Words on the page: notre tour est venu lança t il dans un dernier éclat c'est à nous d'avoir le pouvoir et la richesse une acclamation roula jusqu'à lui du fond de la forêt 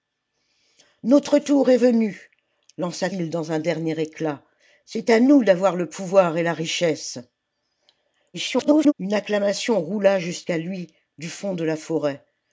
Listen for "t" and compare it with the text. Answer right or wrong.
wrong